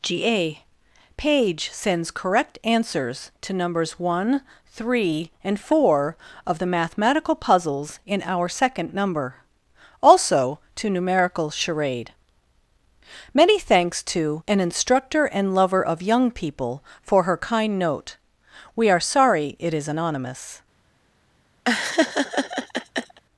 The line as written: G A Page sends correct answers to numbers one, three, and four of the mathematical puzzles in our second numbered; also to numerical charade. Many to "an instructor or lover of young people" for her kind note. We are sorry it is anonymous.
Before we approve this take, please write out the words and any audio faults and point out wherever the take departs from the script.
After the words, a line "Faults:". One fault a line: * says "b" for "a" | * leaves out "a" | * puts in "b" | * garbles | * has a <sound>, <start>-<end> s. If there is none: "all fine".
G A Page sends correct answers to numbers one, three, and four of the mathematical puzzles in our second number; also to numerical charade. Many thanks to "an instructor and lover of young people" for her kind note. We are sorry it is anonymous.
Faults:
* says "number" for "numbered"
* puts in "thanks"
* says "and" for "or"
* has a laugh, 21.7-23.2 s